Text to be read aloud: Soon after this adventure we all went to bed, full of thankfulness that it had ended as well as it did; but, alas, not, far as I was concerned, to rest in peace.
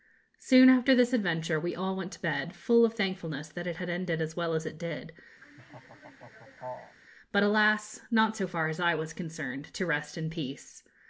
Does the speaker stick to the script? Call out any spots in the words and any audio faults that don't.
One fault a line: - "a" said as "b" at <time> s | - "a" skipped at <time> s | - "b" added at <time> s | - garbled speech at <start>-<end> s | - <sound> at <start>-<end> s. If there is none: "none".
- laugh at 5.4-7.0 s
- "so" added at 8.4 s